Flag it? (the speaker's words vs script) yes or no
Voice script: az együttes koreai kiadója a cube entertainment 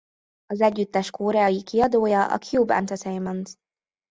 no